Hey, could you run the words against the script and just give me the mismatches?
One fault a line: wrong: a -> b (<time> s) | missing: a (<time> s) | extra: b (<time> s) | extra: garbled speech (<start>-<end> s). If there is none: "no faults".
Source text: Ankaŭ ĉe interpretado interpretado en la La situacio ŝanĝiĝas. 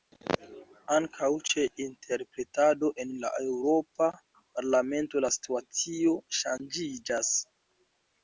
missing: interpretado (2.9 s)
extra: Eŭropa Parlamento (3.4 s)